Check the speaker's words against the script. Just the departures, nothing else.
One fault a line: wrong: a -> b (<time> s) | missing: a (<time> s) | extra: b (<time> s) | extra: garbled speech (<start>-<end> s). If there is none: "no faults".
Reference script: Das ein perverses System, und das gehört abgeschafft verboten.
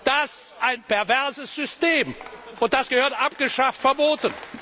no faults